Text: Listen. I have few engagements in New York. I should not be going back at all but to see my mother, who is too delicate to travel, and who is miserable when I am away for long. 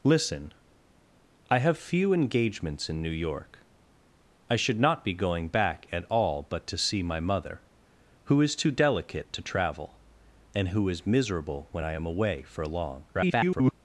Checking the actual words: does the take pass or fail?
fail